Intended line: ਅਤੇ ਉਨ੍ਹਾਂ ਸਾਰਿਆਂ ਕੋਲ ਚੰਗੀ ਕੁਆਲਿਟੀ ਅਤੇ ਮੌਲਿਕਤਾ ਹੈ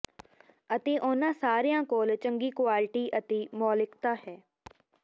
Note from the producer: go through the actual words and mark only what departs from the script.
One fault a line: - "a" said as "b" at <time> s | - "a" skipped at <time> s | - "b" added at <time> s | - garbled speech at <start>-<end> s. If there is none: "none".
none